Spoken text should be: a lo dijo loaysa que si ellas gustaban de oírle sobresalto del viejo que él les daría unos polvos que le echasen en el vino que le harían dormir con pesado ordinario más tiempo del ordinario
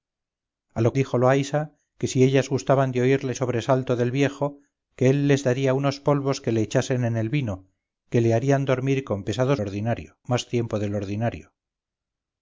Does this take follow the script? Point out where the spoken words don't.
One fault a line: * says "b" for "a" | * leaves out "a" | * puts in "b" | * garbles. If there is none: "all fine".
all fine